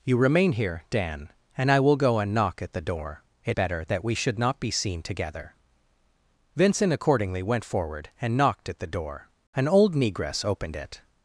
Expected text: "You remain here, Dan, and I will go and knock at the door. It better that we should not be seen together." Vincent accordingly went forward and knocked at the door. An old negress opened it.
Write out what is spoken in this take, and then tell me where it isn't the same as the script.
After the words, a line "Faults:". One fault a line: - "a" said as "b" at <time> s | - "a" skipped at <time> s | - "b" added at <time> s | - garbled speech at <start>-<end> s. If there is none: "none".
"You remain here, Dan, and I will go and knock at the door. It better that we should not be seen together." Vincent accordingly went forward and knocked at the door. An old negress opened it.
Faults:
none